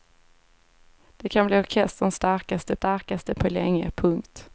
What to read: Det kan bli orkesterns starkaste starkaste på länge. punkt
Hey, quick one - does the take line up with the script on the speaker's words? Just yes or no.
yes